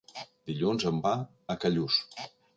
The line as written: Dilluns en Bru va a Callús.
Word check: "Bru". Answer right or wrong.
wrong